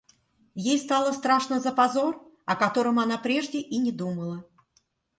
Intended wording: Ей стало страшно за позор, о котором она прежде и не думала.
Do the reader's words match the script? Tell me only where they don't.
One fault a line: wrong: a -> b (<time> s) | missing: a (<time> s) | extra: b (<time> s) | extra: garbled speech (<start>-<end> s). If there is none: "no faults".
no faults